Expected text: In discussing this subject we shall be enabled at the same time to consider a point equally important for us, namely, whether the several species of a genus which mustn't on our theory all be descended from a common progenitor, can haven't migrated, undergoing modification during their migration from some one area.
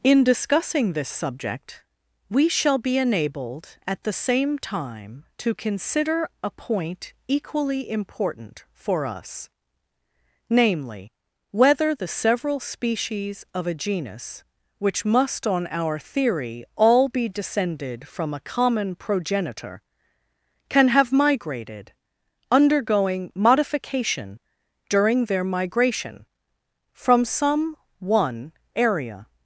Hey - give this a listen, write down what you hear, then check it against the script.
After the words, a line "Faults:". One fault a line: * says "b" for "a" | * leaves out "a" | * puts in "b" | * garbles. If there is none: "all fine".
In discussing this subject we shall be enabled at the same time to consider a point equally important for us, namely, whether the several species of a genus which must on our theory all be descended from a common progenitor, can have migrated, undergoing modification during their migration from some one area.
Faults:
* says "must" for "mustn't"
* says "have" for "haven't"